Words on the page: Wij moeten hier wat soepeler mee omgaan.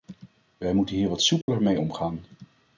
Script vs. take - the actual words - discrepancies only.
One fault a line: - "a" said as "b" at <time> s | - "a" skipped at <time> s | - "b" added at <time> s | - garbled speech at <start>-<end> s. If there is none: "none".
none